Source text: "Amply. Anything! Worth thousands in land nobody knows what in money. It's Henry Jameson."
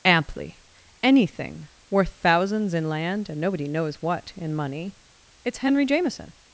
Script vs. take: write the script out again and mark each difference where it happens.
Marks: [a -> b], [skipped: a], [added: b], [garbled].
"Amply. Anything! Worth thousands in land [added: and] nobody knows what in money. It's Henry Jameson."